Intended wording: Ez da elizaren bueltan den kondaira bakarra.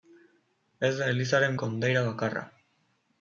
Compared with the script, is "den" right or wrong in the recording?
wrong